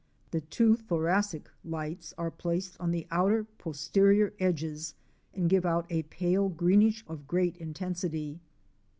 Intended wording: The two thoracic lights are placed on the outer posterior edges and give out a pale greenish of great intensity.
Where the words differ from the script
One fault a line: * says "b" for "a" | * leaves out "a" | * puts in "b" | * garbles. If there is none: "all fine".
all fine